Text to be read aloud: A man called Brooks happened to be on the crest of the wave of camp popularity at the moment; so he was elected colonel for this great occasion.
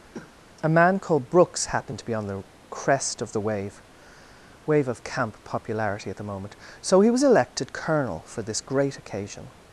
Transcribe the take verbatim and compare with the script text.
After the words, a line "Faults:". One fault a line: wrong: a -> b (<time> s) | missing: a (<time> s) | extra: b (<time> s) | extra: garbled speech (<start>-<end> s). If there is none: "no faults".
A man called Brooks happened to be on the crest of the wave wave of camp popularity at the moment; so he was elected colonel for this great occasion.
Faults:
extra: wave (4.6 s)